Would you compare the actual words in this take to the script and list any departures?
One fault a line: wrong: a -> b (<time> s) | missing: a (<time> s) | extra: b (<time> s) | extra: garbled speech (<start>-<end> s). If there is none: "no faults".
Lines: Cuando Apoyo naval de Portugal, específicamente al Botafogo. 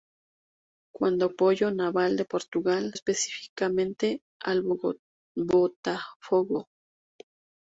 no faults